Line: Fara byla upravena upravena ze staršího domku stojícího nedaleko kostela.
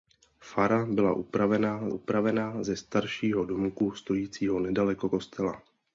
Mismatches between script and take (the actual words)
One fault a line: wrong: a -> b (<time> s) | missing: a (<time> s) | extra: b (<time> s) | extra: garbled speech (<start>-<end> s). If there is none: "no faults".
no faults